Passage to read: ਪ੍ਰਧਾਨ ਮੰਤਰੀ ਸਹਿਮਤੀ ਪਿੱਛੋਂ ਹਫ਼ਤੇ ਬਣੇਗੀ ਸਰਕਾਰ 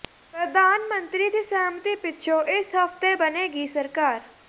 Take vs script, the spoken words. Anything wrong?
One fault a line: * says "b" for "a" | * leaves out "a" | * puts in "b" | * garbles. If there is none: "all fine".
* puts in "ਦੀ"
* puts in "ਇਸ"